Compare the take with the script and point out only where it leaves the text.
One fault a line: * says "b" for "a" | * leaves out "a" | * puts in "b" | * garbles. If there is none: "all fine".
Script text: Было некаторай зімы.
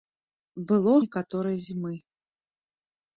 all fine